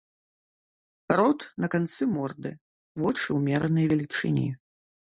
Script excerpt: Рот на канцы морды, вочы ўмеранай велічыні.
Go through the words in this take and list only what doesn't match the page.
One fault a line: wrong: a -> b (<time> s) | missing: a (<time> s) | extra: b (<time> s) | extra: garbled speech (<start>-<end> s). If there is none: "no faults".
no faults